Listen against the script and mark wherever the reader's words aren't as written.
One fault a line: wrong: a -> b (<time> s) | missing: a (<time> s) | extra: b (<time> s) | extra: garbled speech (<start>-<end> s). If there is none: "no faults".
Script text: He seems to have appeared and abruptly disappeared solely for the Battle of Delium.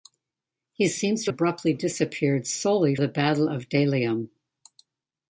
missing: have appeared and (1.3 s)
missing: for (3.0 s)